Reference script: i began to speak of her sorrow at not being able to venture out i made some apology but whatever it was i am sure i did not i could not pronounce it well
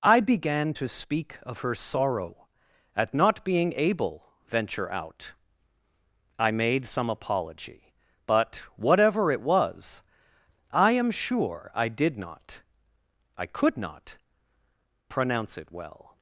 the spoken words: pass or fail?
fail